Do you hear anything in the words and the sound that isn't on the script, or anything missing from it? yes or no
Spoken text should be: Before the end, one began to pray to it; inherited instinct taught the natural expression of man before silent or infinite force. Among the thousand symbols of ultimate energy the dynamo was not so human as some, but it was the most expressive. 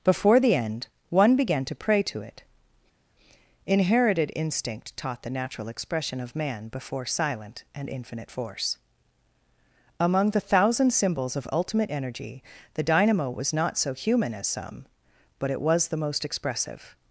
yes